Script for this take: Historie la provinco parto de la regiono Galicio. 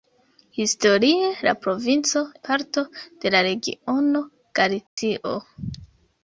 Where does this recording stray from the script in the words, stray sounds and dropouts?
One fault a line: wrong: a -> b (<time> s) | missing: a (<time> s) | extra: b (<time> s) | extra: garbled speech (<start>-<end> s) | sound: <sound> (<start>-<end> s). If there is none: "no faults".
sound: dropout (4.9-5.0 s)